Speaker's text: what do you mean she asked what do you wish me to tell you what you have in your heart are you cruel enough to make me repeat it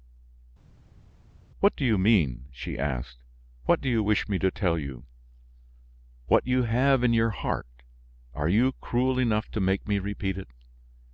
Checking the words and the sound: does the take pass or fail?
pass